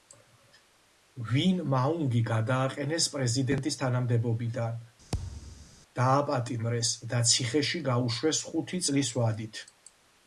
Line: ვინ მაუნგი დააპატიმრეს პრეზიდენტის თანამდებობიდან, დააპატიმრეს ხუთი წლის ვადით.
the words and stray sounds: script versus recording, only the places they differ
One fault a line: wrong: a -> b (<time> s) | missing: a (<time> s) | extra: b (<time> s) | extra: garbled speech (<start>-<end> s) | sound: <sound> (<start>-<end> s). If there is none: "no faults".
wrong: დააპატიმრეს -> გადააყენეს (2.3 s)
sound: thud (5.1-5.7 s)
extra: და ციხეში გაუშვეს (7.1 s)